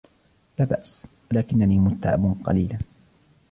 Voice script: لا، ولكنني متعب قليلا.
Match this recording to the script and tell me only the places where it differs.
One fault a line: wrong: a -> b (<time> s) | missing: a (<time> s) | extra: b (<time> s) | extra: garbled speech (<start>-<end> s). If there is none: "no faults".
extra: بأس (0.7 s)